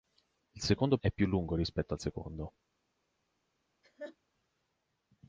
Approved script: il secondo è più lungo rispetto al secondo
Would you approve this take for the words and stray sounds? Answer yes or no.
no